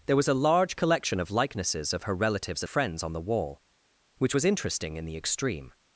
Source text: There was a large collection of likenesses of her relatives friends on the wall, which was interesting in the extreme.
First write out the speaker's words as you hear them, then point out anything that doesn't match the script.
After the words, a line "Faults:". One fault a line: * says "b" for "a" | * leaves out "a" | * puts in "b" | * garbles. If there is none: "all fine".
There was a large collection of likenesses of her relatives friends on the wall, which was interesting in the extreme.
Faults:
all fine